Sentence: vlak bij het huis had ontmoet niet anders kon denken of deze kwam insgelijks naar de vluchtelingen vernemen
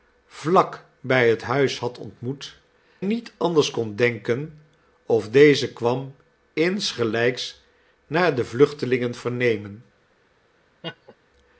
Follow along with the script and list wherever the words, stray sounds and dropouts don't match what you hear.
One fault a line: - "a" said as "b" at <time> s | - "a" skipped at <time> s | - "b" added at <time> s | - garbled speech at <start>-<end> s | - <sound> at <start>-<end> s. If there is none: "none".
- laugh at 10.8-11.2 s